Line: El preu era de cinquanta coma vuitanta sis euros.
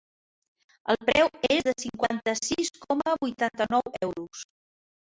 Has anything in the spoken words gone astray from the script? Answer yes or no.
yes